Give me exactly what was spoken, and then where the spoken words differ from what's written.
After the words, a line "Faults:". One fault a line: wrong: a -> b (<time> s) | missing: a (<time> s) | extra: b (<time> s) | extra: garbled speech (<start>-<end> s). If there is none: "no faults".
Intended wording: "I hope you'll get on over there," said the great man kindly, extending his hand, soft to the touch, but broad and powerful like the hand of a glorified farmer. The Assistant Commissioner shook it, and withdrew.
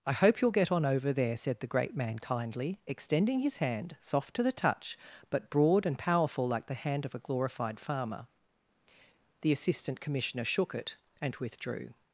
"I hope you'll get on over there," said the great man kindly, extending his hand, soft to the touch, but broad and powerful like the hand of a glorified farmer. The Assistant Commissioner shook it, and withdrew.
Faults:
no faults